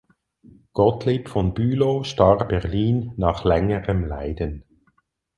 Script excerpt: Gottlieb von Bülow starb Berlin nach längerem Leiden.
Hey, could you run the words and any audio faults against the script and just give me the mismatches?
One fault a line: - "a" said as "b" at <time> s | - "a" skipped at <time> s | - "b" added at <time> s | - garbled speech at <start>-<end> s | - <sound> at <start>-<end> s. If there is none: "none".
none